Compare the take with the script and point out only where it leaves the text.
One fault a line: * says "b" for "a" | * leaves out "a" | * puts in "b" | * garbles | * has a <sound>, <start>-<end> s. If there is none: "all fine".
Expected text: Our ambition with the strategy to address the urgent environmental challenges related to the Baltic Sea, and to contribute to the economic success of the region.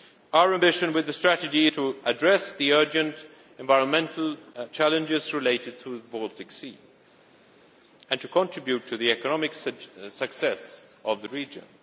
all fine